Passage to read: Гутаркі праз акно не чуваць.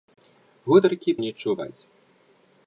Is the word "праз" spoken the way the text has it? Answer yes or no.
no